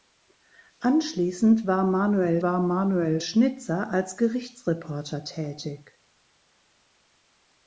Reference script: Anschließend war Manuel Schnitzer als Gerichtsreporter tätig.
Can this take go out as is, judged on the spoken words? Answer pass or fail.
fail